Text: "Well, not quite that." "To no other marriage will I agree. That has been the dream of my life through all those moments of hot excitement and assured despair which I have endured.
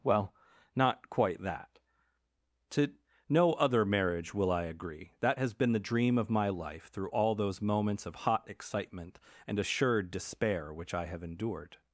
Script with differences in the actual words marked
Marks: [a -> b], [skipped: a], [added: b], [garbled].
"Well, not quite that." "To no other marriage will I agree. That has been the dream of my life through all those moments of hot excitement and assured despair which I have endured.